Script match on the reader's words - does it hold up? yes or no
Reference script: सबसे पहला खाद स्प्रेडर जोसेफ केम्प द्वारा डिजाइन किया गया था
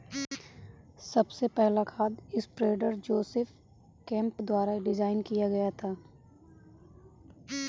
yes